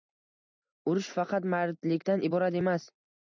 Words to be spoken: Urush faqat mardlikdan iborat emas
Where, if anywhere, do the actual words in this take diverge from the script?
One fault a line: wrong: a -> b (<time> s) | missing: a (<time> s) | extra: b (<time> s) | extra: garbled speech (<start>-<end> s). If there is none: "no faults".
no faults